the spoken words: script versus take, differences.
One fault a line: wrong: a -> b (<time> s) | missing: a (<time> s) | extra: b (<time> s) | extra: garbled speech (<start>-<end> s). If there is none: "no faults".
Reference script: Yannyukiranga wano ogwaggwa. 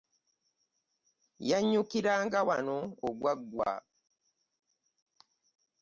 no faults